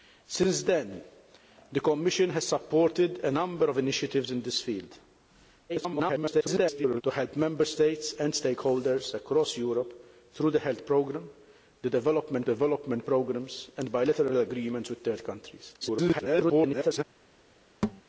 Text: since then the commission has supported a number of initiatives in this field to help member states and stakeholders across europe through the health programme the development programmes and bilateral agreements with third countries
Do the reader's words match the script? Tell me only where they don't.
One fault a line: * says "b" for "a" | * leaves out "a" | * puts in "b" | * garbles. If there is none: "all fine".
* garbles
* puts in "development"
* garbles